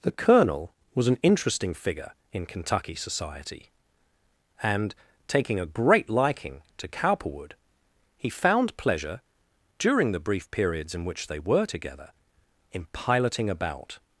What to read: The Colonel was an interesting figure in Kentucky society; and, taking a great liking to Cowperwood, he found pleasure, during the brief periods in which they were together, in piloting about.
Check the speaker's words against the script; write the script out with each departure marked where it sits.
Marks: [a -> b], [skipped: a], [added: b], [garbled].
The Colonel was an interesting figure in Kentucky society; and, taking a great liking to Cowperwood, he found pleasure, during the brief periods in which they were together, in piloting about.